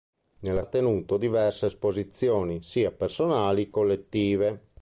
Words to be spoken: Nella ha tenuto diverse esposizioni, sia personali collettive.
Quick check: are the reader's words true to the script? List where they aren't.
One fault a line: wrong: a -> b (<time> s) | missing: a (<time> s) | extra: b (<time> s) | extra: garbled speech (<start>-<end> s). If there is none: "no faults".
no faults